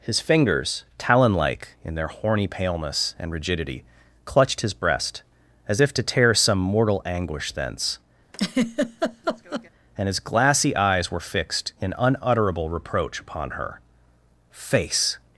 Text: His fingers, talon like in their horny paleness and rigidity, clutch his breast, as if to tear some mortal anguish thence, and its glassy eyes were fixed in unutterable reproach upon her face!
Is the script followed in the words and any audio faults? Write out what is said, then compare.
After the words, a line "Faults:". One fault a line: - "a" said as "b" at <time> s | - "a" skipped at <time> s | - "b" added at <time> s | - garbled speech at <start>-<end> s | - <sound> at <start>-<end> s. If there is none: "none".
His fingers, talon like in their horny paleness and rigidity, clutched his breast, as if to tear some mortal anguish thence, and his glassy eyes were fixed in unutterable reproach upon her face!
Faults:
- "clutch" said as "clutched" at 4.2 s
- laugh at 8.3-9.7 s
- "its" said as "his" at 10.1 s